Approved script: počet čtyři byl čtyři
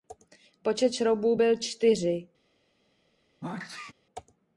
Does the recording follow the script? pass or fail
fail